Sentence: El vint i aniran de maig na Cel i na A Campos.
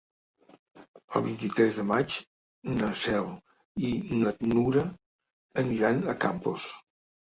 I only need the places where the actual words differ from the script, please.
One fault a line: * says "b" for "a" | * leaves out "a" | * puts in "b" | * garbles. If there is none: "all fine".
* says "tres" for "aniran"
* puts in "Nura aniran"